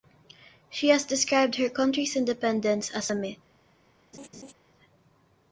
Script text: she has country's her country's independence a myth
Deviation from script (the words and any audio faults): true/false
true